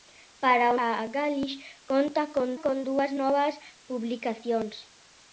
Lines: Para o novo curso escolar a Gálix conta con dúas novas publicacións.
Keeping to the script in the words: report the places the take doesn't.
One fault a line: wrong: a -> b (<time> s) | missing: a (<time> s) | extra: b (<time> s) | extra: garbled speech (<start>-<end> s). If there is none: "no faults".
missing: novo curso escolar (0.8 s)
extra: con (2.6 s)